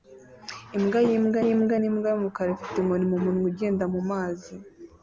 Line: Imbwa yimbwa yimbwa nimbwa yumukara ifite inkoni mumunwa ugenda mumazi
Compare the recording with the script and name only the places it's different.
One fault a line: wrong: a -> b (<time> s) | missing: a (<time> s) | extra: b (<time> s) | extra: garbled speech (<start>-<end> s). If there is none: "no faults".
no faults